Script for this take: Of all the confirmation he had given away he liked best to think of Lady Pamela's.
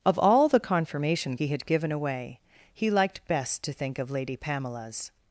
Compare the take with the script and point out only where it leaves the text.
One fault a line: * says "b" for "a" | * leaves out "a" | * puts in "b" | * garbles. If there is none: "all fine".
all fine